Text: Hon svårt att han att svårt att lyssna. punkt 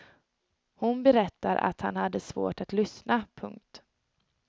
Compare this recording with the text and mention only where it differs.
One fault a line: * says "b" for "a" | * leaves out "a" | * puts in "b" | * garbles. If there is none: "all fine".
* says "berättar" for "svårt"
* says "hade" for "att"